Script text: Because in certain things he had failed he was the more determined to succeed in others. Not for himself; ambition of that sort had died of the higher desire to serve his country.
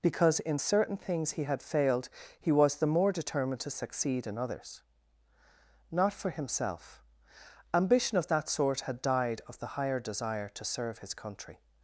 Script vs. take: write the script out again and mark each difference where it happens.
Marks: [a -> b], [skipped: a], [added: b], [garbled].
Because in certain things he had failed he was the more determined to succeed in others. Not for himself; ambition of that sort had died of the higher desire to serve his country.